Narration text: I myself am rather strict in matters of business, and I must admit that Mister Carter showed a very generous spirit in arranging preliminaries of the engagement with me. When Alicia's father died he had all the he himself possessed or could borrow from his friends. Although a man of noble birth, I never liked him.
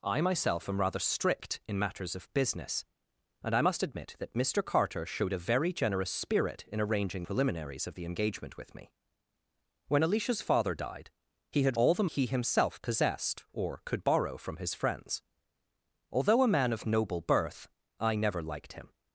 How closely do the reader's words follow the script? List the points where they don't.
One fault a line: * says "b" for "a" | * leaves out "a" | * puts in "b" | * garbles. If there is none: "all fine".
all fine